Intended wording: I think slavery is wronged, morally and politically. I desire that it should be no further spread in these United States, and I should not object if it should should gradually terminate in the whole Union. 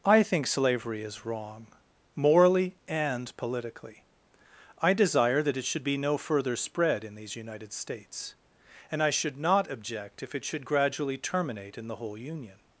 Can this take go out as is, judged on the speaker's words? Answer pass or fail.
fail